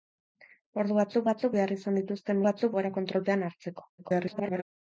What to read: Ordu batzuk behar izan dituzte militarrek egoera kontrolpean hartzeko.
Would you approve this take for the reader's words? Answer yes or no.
no